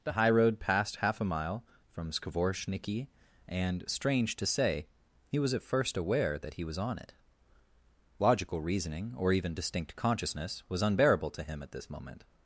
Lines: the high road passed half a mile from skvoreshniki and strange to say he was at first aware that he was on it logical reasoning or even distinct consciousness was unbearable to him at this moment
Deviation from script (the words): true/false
false